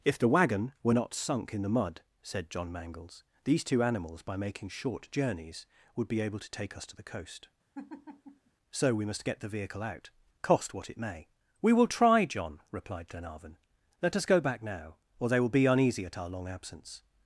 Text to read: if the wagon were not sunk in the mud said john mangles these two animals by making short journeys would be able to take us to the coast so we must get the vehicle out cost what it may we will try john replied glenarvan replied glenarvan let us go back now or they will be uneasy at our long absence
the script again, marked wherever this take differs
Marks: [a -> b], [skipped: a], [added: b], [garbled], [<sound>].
if the wagon were not sunk in the mud said john mangles these two animals by making short journeys would be able to take us to the coast [laugh] so we must get the vehicle out cost what it may we will try john replied glenarvan [skipped: replied glenarvan] let us go back now or they will be uneasy at our long absence